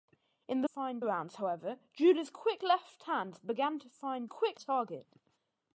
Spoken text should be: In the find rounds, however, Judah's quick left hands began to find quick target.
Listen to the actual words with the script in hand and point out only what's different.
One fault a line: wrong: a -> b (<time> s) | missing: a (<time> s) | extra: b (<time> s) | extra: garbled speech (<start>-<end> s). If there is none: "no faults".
no faults